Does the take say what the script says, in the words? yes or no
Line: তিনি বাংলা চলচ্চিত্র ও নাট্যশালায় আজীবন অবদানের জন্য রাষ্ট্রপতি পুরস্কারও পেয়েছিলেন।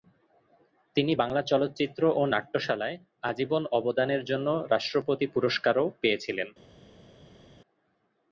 yes